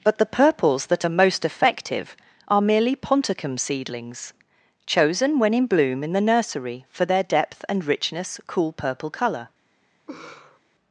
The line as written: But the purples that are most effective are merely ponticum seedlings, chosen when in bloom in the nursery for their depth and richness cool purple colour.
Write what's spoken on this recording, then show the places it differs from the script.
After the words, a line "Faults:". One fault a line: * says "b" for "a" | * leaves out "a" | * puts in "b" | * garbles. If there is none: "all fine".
But the purples that are most effective are merely ponticum seedlings, chosen when in bloom in the nursery for their depth and richness cool purple colour.
Faults:
all fine